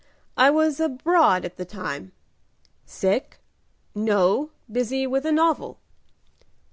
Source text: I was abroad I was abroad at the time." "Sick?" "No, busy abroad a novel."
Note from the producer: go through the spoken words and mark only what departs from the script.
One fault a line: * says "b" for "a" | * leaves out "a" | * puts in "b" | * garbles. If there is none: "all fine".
* leaves out "I was abroad"
* says "with" for "abroad"